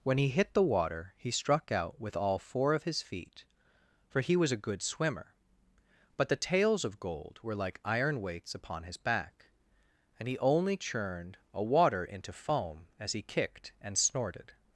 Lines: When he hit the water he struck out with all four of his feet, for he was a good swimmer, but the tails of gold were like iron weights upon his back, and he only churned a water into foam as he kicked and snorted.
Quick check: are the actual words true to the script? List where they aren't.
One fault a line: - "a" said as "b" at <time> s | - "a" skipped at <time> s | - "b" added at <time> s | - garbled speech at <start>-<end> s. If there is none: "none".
none